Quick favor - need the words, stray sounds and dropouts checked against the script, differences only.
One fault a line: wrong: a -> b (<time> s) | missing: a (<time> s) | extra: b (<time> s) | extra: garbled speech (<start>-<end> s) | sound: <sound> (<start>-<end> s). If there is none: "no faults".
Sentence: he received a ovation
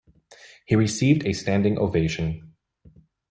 extra: standing (1.3 s)